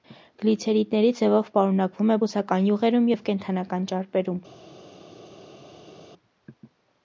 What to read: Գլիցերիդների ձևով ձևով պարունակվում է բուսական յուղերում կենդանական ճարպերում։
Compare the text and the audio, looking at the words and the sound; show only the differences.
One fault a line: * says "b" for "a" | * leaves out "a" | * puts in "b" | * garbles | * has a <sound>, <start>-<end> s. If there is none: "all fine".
* leaves out "ձևով"
* puts in "և"